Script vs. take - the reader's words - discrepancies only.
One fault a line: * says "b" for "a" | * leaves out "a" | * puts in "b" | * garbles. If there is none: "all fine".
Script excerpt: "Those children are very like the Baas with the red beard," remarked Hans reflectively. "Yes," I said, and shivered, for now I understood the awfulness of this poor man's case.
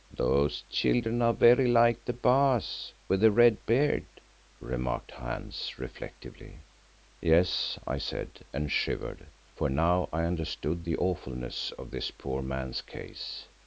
all fine